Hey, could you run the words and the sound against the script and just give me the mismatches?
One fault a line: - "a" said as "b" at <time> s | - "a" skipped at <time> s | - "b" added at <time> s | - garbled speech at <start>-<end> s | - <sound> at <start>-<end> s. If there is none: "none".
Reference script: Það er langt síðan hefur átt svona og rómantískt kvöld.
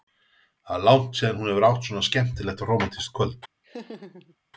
- "hún" added at 1.4 s
- "skemmtilegt" added at 2.1 s
- laugh at 3.6-4.4 s